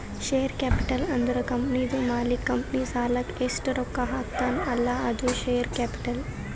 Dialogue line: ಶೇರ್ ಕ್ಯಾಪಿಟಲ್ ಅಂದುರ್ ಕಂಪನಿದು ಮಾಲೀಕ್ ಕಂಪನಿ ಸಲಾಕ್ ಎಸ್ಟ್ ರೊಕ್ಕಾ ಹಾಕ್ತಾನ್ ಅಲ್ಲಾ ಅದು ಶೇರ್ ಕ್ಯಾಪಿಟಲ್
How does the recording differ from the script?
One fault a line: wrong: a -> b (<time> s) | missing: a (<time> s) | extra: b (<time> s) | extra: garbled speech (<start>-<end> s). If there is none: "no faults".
no faults